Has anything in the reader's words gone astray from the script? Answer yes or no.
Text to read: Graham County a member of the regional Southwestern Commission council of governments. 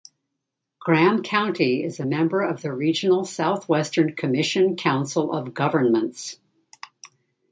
yes